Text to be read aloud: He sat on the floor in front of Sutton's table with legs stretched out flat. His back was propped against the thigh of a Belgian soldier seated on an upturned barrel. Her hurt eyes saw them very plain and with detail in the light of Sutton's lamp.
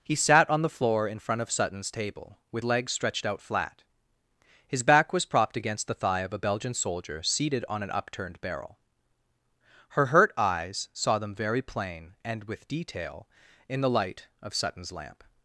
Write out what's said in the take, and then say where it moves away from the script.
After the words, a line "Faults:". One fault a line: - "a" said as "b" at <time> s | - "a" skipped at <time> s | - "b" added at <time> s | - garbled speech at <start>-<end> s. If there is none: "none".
He sat on the floor in front of Sutton's table with legs stretched out flat. His back was propped against the thigh of a Belgian soldier seated on an upturned barrel. Her hurt eyes saw them very plain and with detail in the light of Sutton's lamp.
Faults:
none